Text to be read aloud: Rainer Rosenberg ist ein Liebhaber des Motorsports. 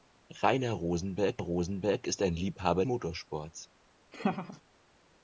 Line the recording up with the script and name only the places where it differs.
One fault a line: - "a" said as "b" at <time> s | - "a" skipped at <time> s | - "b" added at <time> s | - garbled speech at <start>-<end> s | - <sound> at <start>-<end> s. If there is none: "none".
- "Rosenberg" added at 1.4 s
- "des" skipped at 2.9 s
- laugh at 4.1-4.6 s